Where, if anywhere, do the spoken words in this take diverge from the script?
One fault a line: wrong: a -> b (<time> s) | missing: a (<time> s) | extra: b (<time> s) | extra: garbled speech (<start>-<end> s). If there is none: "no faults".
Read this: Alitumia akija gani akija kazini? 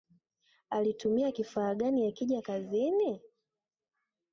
wrong: akija -> kifaa (1.3 s)